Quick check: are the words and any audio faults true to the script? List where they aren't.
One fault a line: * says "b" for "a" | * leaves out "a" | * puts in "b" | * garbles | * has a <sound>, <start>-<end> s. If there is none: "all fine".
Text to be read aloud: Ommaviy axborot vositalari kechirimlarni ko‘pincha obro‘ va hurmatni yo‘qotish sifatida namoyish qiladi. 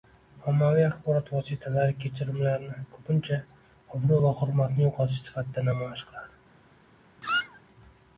* has a squeak, 7.2-7.6 s